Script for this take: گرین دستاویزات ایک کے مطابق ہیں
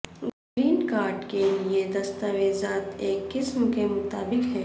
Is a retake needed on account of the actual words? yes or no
yes